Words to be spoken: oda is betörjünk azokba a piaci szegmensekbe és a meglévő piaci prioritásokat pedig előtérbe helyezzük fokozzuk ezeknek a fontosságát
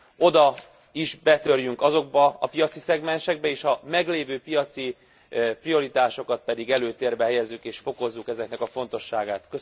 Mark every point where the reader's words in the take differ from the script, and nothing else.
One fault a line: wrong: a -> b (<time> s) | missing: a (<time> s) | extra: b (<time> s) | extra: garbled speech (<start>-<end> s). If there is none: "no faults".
extra: és (7.7 s)